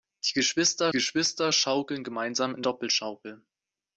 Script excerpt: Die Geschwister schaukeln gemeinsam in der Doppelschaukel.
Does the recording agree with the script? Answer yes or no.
no